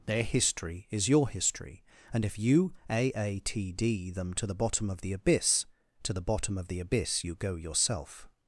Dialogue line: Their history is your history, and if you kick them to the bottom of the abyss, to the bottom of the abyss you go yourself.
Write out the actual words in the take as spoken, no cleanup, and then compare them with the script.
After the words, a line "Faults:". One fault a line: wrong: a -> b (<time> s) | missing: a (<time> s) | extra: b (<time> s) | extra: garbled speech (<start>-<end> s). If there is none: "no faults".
Their history is your history, and if you aatd them to the bottom of the abyss, to the bottom of the abyss you go yourself.
Faults:
wrong: kick -> aatd (2.9 s)